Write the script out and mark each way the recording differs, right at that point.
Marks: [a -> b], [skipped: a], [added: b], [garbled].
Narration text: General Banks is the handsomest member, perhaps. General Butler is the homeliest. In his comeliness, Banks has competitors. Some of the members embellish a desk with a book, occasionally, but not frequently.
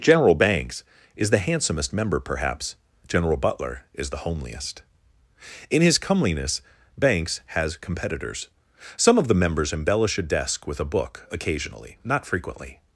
General Banks is the handsomest member, perhaps. General Butler is the homeliest. In his comeliness, Banks has competitors. Some of the members embellish a desk with a book, occasionally, [skipped: but] not frequently.